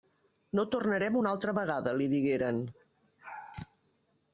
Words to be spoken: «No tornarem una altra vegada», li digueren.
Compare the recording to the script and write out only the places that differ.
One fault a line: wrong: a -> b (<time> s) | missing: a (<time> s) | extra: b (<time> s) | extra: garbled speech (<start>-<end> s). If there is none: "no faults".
no faults